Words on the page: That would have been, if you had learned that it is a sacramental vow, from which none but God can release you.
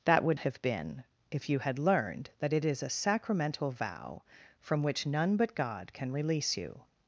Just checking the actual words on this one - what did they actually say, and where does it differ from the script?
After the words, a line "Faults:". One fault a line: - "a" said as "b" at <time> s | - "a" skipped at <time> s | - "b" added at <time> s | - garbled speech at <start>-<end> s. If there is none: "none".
That would have been, if you had learned that it is a sacramental vow, from which none but God can release you.
Faults:
none